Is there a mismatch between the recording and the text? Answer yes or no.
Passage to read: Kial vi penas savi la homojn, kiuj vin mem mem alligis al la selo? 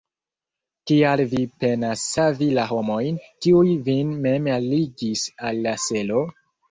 yes